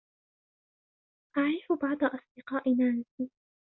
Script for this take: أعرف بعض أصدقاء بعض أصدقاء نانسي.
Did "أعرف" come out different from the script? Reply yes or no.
no